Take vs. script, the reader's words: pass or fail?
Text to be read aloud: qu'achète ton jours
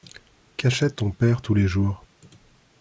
fail